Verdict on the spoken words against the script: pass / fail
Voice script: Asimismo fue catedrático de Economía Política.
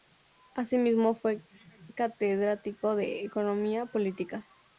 pass